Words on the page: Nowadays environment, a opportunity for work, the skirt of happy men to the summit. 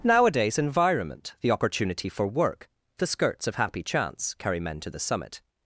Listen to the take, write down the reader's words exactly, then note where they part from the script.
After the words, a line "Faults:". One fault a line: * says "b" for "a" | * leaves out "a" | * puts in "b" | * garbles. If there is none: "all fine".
Nowadays environment, the opportunity for work, the skirts of happy chance carry men to the summit.
Faults:
* says "the" for "a"
* says "skirts" for "skirt"
* puts in "chance carry"